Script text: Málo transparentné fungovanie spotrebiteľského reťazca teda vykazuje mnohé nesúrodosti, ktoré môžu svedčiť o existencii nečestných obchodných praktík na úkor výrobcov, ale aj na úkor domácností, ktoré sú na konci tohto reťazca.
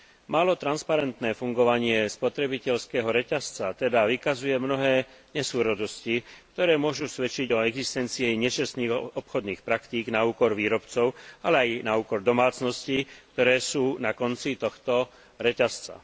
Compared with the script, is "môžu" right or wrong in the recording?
right